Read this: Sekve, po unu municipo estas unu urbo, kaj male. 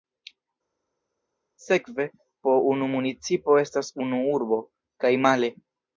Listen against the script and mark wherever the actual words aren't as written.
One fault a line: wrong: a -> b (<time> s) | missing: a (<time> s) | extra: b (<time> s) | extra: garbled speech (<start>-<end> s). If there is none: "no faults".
no faults